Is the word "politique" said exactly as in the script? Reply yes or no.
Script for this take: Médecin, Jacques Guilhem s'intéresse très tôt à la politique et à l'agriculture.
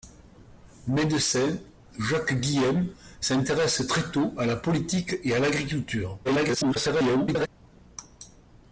yes